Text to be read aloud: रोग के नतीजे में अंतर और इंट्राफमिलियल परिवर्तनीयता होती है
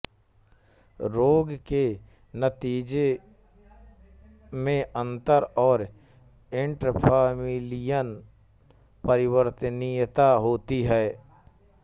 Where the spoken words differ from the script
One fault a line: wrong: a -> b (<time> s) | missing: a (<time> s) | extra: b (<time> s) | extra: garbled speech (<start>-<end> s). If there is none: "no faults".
no faults